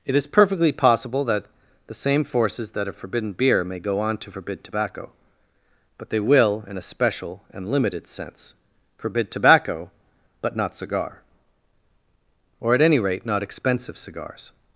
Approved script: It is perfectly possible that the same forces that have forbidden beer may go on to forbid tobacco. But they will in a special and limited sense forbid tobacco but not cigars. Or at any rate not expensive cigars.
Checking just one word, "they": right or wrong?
right